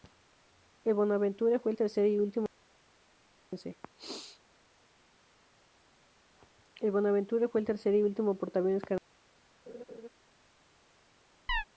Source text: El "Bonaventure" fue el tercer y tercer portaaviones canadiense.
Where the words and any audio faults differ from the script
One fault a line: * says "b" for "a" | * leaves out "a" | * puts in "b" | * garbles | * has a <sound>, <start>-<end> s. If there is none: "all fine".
* says "último" for "tercer"
* has a laugh, 9.7-10.1 s
* has a chirp, 11.5-11.6 s